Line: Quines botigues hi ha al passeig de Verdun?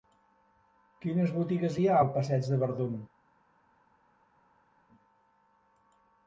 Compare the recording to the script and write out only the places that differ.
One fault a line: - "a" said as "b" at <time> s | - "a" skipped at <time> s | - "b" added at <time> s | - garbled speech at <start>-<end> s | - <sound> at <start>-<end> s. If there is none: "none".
none